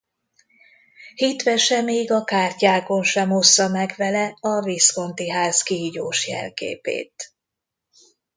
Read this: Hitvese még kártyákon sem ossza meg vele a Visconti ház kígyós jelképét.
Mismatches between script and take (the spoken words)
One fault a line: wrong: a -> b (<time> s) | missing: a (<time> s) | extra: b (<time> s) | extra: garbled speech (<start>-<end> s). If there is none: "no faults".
extra: a (2.1 s)